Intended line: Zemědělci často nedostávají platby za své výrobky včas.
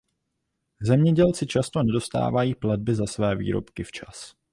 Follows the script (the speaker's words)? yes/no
yes